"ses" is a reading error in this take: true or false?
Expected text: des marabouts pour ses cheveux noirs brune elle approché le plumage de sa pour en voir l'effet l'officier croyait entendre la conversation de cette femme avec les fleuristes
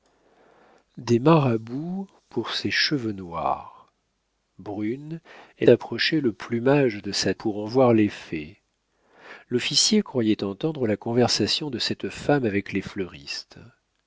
false